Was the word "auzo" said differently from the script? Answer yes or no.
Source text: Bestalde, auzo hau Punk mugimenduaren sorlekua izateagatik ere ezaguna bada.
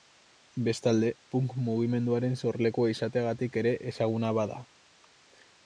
yes